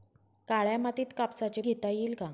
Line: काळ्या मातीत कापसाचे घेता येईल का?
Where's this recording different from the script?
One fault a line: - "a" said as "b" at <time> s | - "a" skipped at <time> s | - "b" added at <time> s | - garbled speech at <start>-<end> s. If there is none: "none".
none